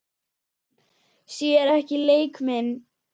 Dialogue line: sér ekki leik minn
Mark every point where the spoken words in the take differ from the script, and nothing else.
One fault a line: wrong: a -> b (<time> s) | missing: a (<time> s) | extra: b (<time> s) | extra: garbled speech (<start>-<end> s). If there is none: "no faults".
no faults